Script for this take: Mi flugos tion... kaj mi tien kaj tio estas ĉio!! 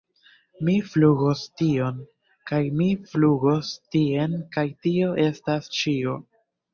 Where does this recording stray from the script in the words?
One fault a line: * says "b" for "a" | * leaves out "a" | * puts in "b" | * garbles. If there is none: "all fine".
* puts in "flugos"